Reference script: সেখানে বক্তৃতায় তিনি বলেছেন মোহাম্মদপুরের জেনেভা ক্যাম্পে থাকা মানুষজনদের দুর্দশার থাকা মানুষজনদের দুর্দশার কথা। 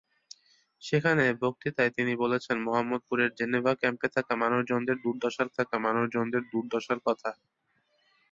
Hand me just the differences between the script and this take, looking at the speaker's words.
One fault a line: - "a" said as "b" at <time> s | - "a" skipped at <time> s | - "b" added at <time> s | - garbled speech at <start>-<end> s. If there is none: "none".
none